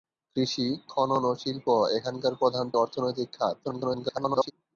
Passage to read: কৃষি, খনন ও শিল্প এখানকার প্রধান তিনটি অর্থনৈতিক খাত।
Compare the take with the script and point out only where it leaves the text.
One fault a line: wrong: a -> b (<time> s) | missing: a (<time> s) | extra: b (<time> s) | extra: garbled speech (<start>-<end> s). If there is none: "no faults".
missing: তিনটি (2.6 s)
extra: garbled speech (3.6-4.5 s)